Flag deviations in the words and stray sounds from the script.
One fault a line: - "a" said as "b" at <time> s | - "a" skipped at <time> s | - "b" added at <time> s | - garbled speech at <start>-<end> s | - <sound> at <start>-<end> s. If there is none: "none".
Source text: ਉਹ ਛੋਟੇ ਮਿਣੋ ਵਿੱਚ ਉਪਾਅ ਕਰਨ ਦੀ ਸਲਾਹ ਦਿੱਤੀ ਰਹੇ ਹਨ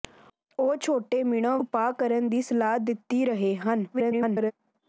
- "ਵਿੱਚ" skipped at 1.6 s
- garbled speech at 3.9-4.5 s